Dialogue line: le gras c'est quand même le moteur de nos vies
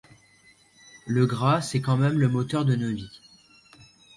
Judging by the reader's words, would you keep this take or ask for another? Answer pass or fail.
pass